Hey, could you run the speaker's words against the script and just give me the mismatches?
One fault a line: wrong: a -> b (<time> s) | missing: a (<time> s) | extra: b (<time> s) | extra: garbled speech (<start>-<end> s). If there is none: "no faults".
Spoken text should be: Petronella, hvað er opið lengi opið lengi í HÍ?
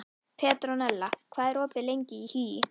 missing: opið lengi (2.2 s)